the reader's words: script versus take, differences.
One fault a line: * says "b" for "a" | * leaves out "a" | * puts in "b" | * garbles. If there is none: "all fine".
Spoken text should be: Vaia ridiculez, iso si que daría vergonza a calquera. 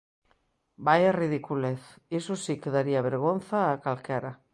all fine